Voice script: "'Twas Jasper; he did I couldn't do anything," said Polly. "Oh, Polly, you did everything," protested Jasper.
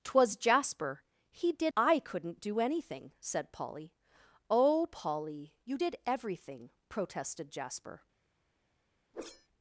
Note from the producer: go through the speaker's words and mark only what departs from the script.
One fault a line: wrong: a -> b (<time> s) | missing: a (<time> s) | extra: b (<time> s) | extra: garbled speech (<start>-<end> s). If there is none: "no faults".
no faults